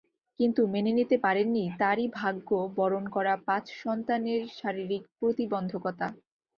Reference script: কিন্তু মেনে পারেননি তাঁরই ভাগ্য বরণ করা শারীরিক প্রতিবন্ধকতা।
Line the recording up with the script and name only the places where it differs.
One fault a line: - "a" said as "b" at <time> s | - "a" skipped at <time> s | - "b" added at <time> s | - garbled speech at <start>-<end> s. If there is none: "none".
- "নিতে" added at 1.0 s
- "পাঁচ সন্তানের" added at 3.5 s